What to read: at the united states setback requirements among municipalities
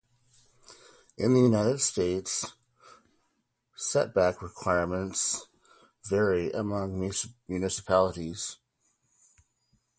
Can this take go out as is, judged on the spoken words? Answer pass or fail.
fail